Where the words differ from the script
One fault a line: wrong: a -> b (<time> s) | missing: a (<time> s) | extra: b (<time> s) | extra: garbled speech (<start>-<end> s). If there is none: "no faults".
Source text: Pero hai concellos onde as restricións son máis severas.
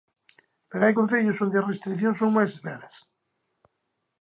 no faults